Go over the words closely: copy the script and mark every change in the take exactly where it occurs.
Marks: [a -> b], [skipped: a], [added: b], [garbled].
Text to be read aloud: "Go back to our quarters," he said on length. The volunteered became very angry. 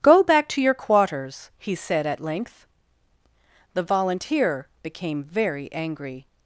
"Go back to [our -> your] quarters," he said [on -> at] length. The [volunteered -> volunteer] became very angry.